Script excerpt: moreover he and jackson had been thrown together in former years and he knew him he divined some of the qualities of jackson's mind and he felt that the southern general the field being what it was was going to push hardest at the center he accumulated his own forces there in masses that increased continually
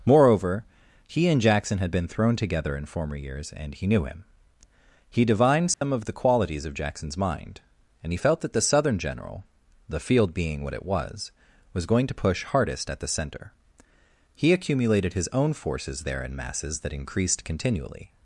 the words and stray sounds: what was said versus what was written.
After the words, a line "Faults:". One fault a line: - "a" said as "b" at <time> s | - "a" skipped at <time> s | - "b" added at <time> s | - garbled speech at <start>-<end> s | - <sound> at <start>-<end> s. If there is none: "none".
moreover he and jackson had been thrown together in former years and he knew him he divined some of the qualities of jackson's mind and he felt that the southern general the field being what it was was going to push hardest at the center he accumulated his own forces there in masses that increased continually
Faults:
- dropout at 5.7-5.8 s